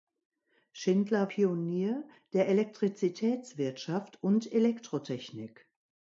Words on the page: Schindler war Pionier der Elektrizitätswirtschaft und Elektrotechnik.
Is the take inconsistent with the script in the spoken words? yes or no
yes